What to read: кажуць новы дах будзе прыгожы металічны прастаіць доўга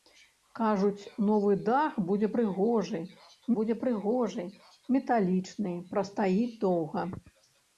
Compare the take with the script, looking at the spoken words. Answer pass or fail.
fail